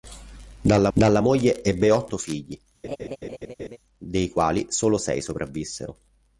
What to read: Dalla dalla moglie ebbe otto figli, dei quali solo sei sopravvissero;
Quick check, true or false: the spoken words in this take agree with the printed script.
true